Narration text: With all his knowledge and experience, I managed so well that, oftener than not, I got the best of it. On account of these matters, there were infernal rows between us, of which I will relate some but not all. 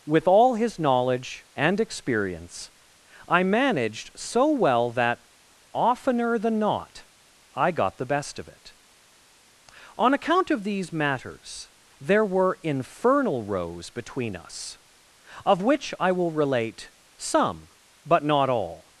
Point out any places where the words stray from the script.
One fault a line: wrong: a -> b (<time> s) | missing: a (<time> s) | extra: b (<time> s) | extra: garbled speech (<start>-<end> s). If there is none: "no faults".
no faults